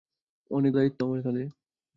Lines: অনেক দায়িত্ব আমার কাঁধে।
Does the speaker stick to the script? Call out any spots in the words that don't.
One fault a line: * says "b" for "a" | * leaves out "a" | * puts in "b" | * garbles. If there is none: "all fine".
all fine